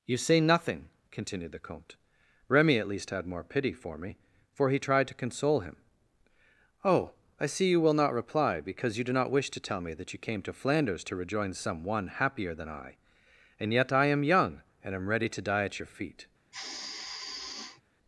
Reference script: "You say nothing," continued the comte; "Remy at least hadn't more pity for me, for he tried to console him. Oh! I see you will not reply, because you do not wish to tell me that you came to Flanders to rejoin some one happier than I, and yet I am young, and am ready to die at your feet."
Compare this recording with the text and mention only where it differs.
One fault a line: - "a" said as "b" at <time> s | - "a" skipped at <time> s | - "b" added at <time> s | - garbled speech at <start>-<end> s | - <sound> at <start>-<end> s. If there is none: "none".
- "hadn't" said as "had" at 3.1 s
- sigh at 16.5-17.8 s